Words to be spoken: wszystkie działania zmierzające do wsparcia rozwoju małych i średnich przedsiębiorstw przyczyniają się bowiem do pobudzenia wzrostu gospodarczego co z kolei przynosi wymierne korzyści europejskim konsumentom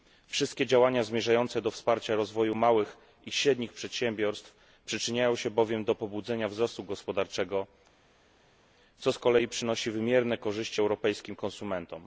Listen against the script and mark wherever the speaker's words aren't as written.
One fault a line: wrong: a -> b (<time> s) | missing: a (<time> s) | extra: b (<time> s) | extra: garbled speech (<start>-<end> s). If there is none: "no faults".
no faults